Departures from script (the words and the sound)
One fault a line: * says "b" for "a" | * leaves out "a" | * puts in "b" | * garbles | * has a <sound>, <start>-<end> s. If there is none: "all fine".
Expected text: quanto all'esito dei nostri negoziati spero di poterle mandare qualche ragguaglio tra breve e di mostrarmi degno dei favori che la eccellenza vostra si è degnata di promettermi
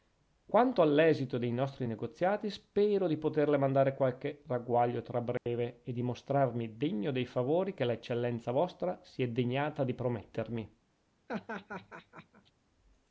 * has a dropout, 5.4-5.5 s
* has a laugh, 11.3-12.5 s